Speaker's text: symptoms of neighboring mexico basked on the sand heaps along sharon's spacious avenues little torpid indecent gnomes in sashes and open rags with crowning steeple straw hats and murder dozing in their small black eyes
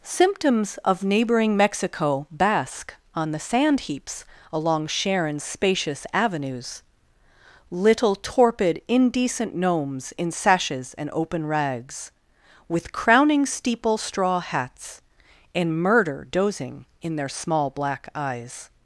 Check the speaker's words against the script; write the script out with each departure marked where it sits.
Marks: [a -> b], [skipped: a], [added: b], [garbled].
symptoms of neighboring mexico [basked -> bask] on the sand heaps along sharon's spacious avenues little torpid indecent gnomes in sashes and open rags with crowning steeple straw hats and murder dozing in their small black eyes